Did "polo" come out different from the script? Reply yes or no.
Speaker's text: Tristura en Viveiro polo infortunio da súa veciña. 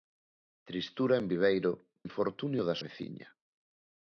yes